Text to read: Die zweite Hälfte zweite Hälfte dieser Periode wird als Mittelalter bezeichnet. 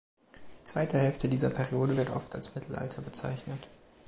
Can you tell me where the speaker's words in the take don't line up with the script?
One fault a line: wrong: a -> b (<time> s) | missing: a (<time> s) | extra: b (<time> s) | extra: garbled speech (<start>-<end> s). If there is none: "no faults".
missing: zweite Hälfte (1.3 s)
extra: oft (2.1 s)